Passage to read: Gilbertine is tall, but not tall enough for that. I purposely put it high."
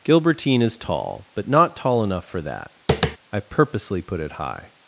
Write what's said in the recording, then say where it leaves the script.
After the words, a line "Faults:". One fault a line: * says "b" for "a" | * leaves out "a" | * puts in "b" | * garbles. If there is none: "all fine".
Gilbertine is tall, but not tall enough for that. I purposely put it high."
Faults:
all fine